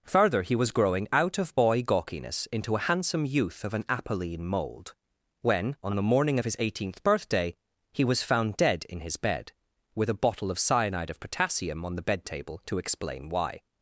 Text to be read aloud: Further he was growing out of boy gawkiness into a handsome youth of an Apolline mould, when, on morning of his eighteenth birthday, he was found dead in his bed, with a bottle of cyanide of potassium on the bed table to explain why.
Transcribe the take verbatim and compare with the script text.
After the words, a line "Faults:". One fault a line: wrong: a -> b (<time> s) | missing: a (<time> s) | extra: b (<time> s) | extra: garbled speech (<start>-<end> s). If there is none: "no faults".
Further he was growing out of boy gawkiness into a handsome youth of an Apolline mould, when, on the morning of his eighteenth birthday, he was found dead in his bed, with a bottle of cyanide of potassium on the bed table to explain why.
Faults:
extra: the (6.0 s)